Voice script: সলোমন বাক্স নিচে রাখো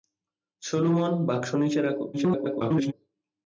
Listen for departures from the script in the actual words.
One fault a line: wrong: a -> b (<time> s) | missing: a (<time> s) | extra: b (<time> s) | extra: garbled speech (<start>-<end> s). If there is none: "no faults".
extra: garbled speech (2.1-2.9 s)